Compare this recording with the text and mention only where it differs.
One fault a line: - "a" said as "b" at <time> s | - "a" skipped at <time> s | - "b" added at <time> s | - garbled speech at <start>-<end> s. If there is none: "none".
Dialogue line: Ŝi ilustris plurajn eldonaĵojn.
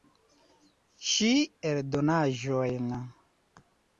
- "ilustris plurajn" skipped at 1.3 s